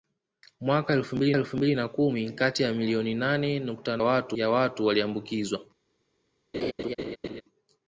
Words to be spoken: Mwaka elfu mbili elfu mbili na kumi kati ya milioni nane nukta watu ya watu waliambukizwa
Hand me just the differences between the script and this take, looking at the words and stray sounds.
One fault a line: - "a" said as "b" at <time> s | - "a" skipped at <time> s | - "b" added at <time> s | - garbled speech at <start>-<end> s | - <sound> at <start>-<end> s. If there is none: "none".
- laugh at 6.5-7.4 s